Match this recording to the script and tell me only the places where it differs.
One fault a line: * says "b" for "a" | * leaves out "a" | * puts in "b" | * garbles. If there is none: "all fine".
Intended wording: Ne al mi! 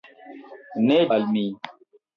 all fine